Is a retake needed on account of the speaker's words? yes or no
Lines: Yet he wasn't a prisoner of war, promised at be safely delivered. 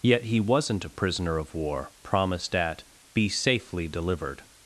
no